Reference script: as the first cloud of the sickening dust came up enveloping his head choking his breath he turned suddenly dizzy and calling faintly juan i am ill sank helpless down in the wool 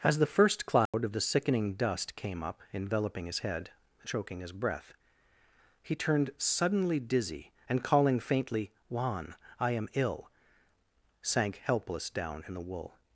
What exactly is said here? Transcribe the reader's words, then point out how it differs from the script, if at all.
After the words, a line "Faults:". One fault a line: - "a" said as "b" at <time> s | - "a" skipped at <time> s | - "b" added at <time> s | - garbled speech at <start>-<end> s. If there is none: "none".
as the first cloud of the sickening dust came up enveloping his head choking his breath he turned suddenly dizzy and calling faintly juan i am ill sank helpless down in the wool
Faults:
none